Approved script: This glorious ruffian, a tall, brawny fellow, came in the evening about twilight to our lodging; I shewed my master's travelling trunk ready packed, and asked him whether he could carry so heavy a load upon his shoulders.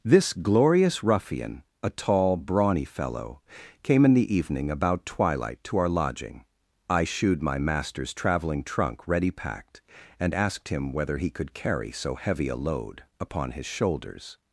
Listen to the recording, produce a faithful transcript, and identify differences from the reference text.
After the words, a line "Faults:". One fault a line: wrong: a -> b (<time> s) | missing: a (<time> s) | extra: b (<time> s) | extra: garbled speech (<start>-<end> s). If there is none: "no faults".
This glorious ruffian, a tall, brawny fellow, came in the evening about twilight to our lodging; I shewed my master's travelling trunk ready packed, and asked him whether he could carry so heavy a load upon his shoulders.
Faults:
no faults